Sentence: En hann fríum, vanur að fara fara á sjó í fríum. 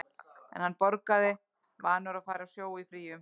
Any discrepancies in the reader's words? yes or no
yes